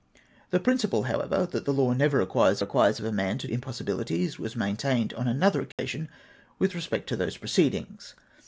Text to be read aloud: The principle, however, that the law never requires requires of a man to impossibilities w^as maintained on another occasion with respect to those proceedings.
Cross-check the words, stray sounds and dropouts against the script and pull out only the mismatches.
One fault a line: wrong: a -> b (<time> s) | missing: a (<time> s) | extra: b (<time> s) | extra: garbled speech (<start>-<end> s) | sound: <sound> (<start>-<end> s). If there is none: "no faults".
sound: dropout (5.7-5.8 s)